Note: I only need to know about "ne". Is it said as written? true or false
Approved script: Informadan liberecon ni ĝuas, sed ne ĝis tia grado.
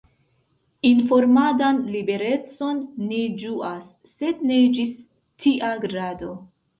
true